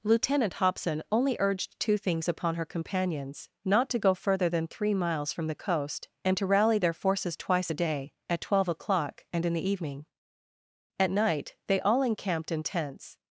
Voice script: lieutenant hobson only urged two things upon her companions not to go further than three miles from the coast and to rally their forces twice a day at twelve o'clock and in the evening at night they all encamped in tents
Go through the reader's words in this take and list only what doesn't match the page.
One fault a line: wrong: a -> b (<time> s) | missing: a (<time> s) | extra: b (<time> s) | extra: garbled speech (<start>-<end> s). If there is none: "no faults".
no faults